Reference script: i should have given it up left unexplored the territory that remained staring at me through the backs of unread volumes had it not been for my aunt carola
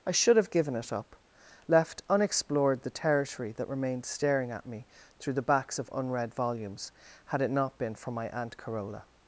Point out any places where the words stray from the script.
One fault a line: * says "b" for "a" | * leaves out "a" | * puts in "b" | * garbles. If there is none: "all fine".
all fine